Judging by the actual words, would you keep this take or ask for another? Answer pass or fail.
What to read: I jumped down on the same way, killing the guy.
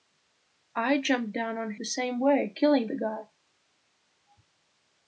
pass